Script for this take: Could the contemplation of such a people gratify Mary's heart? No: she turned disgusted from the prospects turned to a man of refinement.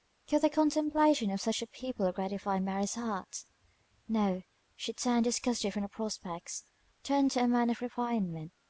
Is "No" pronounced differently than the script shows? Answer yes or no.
no